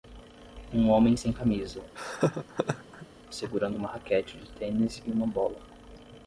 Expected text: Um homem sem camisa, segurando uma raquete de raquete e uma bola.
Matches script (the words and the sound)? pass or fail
fail